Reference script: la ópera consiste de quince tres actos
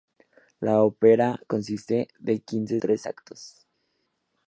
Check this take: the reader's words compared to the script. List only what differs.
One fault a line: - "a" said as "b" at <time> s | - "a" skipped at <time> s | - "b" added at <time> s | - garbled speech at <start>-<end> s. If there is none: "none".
none